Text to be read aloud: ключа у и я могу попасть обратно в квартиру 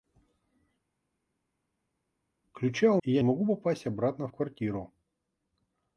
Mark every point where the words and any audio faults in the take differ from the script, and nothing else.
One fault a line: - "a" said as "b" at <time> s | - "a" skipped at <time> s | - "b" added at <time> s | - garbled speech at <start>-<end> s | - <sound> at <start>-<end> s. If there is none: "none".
none